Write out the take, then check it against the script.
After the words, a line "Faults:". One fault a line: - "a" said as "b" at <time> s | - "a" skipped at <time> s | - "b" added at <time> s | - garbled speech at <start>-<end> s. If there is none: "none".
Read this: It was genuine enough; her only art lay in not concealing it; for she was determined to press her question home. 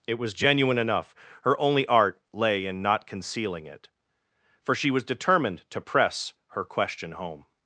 It was genuine enough; her only art lay in not concealing it; for she was determined to press her question home.
Faults:
none